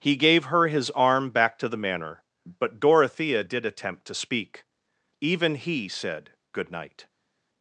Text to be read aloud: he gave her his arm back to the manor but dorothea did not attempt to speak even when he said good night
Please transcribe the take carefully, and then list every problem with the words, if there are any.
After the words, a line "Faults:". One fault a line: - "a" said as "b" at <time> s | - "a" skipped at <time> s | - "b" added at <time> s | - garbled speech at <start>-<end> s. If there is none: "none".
he gave her his arm back to the manor but dorothea did attempt to speak even he said good night
Faults:
- "not" skipped at 3.6 s
- "when" skipped at 5.5 s